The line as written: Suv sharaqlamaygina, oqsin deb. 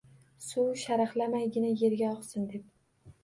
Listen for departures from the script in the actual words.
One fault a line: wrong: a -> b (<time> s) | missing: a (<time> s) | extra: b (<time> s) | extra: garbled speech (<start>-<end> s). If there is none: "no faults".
extra: yerga (1.8 s)